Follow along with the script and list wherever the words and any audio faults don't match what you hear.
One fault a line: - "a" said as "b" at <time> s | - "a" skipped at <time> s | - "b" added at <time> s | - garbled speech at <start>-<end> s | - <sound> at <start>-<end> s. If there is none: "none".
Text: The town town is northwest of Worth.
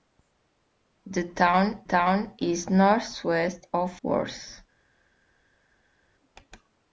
none